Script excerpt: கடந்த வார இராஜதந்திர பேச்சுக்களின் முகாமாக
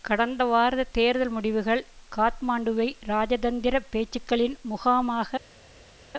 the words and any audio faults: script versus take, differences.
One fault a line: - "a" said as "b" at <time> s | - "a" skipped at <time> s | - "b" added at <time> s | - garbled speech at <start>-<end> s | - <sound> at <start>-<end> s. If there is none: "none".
- "தேர்தல் முடிவுகள் காத்மாண்டுவை" added at 0.9 s